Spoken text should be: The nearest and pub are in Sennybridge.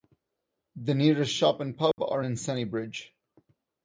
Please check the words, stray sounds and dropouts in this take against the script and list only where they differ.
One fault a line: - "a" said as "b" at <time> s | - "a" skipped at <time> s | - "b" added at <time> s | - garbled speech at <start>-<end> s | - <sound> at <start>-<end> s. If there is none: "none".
- "shop" added at 1.3 s
- dropout at 1.9-2.0 s